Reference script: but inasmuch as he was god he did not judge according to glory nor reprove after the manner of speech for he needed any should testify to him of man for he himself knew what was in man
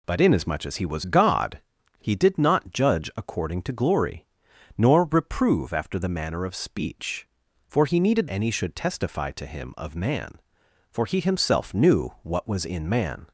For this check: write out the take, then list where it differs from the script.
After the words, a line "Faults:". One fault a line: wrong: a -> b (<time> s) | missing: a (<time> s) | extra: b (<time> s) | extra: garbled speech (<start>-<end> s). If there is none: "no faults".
but inasmuch as he was god he did not judge according to glory nor reprove after the manner of speech for he needed any should testify to him of man for he himself knew what was in man
Faults:
no faults